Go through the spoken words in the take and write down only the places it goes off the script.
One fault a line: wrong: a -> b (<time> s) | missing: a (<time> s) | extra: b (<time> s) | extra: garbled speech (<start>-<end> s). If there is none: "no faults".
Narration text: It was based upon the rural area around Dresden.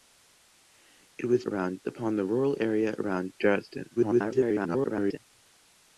wrong: based -> around (1.4 s)
extra: garbled speech (4.0-5.2 s)